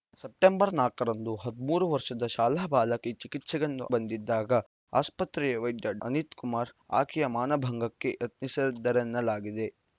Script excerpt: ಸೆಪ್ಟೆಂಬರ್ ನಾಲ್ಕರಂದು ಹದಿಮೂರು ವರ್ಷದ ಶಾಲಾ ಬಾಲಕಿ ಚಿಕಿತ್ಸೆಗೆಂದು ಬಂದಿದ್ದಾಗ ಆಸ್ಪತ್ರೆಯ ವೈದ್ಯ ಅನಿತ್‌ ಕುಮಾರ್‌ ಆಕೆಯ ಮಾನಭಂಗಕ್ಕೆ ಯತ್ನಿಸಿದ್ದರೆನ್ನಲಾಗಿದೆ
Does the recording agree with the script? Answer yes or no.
yes